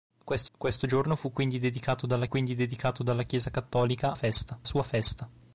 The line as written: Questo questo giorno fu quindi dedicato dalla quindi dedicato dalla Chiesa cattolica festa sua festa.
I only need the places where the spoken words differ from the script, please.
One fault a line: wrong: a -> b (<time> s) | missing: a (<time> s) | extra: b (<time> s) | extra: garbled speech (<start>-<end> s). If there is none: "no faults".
no faults